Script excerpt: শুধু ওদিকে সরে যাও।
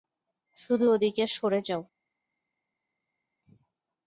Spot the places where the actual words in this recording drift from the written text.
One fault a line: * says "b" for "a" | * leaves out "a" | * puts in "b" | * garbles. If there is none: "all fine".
all fine